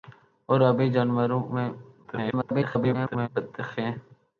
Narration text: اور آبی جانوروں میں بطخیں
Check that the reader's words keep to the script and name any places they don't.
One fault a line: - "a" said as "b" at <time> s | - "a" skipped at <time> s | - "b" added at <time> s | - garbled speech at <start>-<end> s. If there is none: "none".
- garbled speech at 2.0-3.3 s